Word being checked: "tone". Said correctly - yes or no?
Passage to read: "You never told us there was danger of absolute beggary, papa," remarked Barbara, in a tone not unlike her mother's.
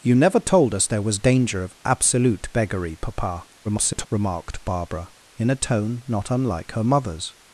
yes